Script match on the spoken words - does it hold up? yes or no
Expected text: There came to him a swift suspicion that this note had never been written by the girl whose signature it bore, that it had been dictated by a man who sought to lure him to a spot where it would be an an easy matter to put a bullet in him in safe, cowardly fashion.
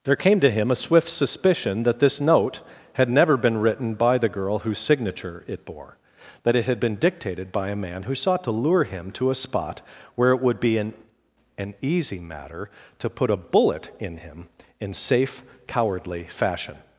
yes